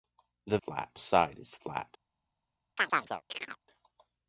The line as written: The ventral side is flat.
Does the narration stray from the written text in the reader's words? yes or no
yes